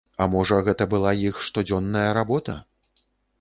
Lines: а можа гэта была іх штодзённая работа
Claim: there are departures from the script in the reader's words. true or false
false